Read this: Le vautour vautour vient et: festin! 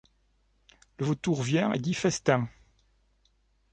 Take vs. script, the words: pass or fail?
fail